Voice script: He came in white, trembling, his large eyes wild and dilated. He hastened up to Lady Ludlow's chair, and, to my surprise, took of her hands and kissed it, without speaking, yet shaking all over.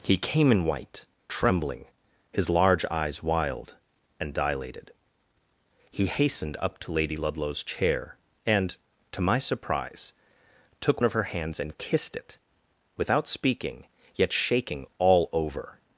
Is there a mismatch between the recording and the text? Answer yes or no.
no